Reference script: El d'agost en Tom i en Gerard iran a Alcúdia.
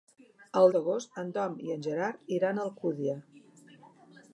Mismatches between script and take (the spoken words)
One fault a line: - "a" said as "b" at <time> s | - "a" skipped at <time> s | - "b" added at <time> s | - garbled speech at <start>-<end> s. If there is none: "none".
none